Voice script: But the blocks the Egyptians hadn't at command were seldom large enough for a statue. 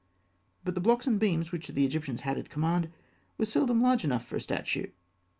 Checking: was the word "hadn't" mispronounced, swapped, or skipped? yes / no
yes